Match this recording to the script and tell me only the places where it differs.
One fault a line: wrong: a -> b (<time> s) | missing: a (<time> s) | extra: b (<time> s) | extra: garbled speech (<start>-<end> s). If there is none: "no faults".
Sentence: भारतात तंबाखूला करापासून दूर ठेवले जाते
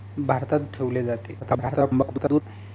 missing: तंबाखूला करापासून दूर (0.6 s)
extra: garbled speech (1.4-2.4 s)